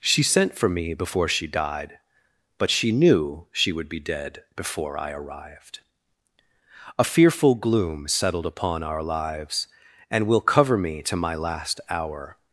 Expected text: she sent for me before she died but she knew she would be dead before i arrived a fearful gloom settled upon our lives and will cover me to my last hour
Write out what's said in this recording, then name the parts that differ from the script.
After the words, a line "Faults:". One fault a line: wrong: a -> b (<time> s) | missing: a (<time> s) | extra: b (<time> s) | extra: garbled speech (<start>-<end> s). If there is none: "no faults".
she sent for me before she died but she knew she would be dead before i arrived a fearful gloom settled upon our lives and will cover me to my last hour
Faults:
no faults